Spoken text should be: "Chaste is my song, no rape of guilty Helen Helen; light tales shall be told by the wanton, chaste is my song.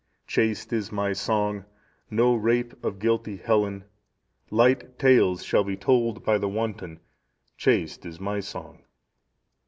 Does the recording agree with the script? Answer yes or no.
no